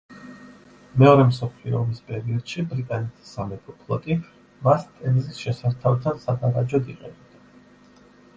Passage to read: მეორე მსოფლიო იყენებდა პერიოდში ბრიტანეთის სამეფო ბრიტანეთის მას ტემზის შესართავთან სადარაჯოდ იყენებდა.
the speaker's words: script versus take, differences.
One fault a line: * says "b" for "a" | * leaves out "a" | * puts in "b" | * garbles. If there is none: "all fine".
* says "ომის" for "იყენებდა"
* says "ფლოტი" for "ბრიტანეთის"